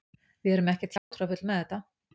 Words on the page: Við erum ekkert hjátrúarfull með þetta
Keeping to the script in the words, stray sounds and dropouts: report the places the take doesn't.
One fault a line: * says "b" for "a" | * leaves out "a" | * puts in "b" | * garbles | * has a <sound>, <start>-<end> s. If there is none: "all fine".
* has a dropout, 1.0-1.1 s